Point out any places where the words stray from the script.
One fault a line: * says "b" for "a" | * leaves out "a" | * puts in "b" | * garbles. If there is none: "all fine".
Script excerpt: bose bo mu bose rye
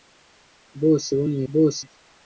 all fine